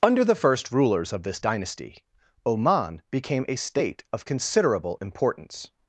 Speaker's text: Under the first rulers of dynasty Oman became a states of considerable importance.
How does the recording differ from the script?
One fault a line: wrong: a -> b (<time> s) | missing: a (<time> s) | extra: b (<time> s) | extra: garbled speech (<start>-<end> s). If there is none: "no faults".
extra: this (1.2 s)
wrong: states -> state (3.5 s)